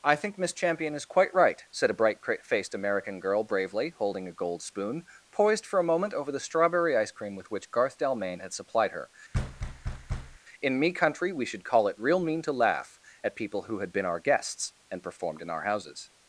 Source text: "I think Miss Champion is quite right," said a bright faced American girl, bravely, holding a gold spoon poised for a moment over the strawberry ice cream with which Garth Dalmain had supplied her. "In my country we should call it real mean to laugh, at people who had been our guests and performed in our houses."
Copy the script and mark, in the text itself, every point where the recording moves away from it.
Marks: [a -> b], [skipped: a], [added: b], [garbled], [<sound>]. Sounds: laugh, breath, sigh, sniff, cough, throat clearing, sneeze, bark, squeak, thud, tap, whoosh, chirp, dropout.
"I think Miss Champion is quite right," said a bright faced American girl, bravely, holding a gold spoon poised for a moment over the strawberry ice cream with which Garth Dalmain had supplied her. [thud] "In [my -> me] country we should call it real mean to laugh, at people who had been our guests and performed in our houses."